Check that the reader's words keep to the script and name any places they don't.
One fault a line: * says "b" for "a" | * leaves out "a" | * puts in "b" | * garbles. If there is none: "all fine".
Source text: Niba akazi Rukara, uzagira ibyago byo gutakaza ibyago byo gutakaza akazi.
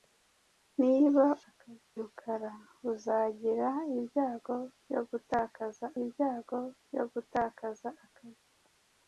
all fine